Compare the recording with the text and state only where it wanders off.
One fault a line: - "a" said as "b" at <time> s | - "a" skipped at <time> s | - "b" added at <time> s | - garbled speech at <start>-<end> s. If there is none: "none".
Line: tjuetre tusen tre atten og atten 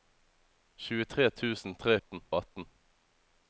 none